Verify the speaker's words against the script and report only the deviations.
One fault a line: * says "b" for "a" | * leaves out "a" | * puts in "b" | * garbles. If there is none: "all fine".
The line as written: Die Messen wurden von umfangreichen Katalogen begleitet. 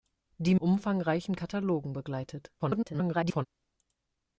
* leaves out "Messen wurden von"
* garbles